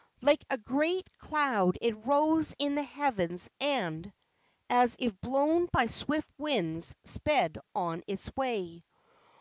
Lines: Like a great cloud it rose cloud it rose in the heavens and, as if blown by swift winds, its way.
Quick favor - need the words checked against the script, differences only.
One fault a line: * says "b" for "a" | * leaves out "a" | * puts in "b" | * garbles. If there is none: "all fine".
* leaves out "cloud it rose"
* puts in "sped on"